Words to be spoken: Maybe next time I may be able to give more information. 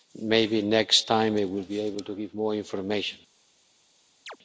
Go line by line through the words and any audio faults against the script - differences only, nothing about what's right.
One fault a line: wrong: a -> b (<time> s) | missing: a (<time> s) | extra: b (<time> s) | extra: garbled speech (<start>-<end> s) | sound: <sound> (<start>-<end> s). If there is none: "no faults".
wrong: may -> will (1.4 s)
sound: chirp (4.3-4.4 s)